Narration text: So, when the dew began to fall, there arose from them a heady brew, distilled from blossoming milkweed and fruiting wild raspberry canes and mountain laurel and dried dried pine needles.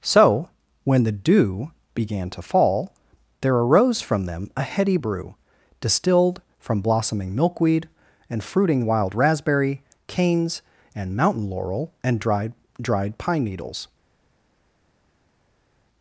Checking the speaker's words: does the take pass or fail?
pass